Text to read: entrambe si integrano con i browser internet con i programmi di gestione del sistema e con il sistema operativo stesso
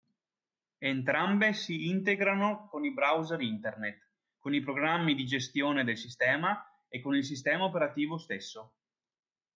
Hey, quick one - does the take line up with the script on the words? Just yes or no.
yes